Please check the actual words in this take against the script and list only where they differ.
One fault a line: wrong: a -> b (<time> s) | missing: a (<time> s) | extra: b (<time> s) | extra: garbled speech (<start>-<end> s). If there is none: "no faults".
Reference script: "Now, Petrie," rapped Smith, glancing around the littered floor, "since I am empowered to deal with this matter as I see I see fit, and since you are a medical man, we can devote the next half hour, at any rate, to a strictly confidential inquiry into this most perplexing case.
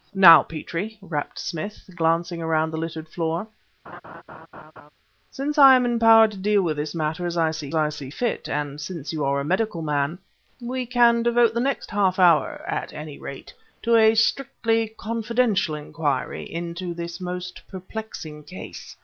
no faults